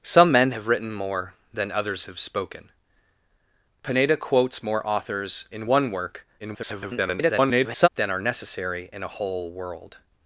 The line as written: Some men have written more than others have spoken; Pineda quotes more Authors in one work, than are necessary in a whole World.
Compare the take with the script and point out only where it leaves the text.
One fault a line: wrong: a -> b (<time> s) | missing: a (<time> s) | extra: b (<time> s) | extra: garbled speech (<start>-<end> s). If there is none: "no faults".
extra: garbled speech (6.4-7.9 s)